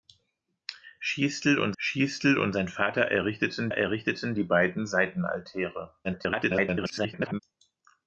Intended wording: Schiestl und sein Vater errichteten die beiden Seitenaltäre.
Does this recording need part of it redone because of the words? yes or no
yes